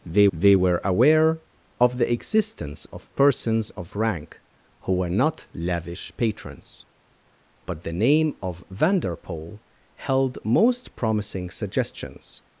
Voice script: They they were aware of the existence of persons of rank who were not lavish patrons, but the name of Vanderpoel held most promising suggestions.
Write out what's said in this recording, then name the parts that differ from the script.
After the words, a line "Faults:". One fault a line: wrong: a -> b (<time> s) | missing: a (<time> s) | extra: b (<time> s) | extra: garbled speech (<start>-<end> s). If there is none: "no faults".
They they were aware of the existence of persons of rank who were not lavish patrons, but the name of Vanderpoel held most promising suggestions.
Faults:
no faults